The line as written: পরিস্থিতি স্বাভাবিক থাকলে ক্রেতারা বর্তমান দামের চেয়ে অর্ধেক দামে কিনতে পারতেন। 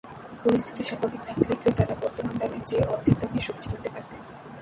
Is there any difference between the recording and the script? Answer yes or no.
yes